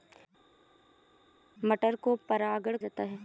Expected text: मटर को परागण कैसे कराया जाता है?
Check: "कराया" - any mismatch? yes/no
yes